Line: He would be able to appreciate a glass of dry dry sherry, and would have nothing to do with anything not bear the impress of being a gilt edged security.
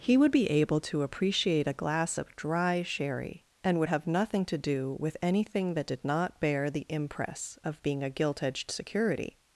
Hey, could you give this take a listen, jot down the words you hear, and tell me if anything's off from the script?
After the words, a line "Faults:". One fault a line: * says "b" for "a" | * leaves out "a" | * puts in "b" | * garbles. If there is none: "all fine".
He would be able to appreciate a glass of dry sherry, and would have nothing to do with anything that did not bear the impress of being a gilt edged security.
Faults:
* leaves out "dry"
* puts in "that did"